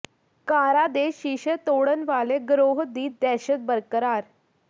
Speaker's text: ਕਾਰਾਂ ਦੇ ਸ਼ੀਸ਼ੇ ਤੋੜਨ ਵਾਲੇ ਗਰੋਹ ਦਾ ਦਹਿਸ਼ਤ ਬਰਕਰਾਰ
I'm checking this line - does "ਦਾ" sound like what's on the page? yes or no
no